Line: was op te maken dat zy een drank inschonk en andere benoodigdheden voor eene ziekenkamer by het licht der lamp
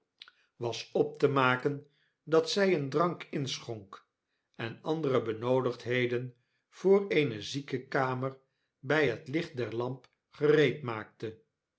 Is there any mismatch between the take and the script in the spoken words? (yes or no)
no